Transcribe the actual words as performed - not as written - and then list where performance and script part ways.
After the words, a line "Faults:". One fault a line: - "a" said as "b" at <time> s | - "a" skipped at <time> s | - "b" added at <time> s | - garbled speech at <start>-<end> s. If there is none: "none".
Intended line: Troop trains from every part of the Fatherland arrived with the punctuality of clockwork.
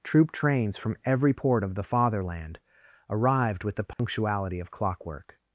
Troop trains from every port of the Fatherland arrived with the punctuality of clockwork.
Faults:
- "part" said as "port" at 1.3 s